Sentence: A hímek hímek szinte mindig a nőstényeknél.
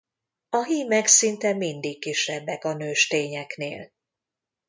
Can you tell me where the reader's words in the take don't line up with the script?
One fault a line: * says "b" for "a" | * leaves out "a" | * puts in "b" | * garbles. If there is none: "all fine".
* leaves out "hímek"
* puts in "kisebbek"